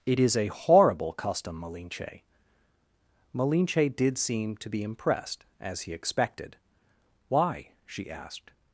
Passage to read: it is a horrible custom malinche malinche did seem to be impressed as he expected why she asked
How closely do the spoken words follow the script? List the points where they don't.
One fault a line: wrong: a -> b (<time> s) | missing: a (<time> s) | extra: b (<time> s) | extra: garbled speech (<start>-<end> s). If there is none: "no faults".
no faults